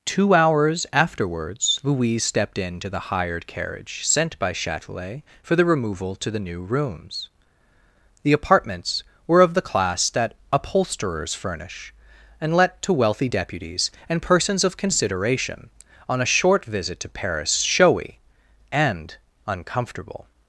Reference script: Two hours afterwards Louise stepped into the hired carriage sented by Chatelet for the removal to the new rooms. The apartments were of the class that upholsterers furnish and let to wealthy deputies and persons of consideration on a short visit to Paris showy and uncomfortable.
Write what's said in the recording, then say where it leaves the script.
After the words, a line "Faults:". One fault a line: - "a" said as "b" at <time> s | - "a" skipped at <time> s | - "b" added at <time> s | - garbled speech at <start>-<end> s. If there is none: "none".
Two hours afterwards Louise stepped into the hired carriage sent by Chatelet for the removal to the new rooms. The apartments were of the class that upholsterers furnish and let to wealthy deputies and persons of consideration on a short visit to Paris showy and uncomfortable.
Faults:
- "sented" said as "sent" at 4.1 s